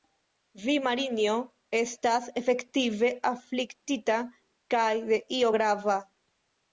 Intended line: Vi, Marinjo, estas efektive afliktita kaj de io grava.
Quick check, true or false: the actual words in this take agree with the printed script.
true